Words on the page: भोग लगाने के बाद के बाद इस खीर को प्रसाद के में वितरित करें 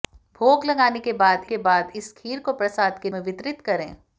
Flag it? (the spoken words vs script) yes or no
no